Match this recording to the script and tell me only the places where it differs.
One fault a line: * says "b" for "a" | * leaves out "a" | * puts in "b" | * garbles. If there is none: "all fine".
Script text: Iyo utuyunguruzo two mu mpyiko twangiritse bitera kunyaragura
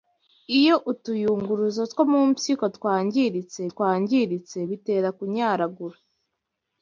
* puts in "twangiritse"